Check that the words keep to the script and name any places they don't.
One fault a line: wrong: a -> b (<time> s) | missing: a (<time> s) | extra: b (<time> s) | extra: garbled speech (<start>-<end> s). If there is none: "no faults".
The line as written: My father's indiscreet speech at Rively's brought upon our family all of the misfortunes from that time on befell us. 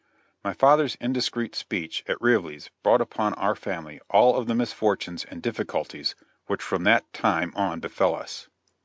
extra: and difficulties which (5.3 s)